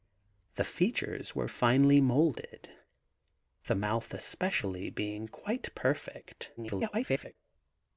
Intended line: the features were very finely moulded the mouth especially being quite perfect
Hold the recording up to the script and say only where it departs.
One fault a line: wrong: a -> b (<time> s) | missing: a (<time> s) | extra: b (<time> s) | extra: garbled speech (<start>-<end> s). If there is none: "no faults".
missing: very (1.4 s)
extra: garbled speech (6.6-7.4 s)